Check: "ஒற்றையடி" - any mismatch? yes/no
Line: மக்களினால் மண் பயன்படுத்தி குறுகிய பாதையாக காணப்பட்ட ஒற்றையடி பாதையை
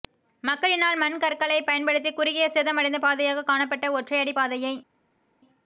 no